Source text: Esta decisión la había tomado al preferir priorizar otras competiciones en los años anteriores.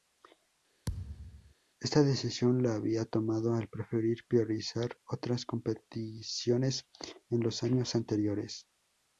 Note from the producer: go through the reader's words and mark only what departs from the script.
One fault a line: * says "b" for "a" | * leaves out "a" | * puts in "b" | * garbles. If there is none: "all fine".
all fine